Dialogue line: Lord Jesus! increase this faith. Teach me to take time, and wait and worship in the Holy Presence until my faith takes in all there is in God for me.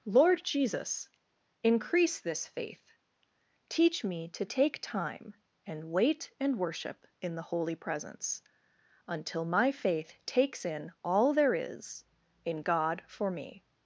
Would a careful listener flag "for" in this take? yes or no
no